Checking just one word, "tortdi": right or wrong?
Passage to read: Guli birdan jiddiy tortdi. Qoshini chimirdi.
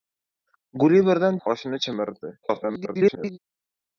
wrong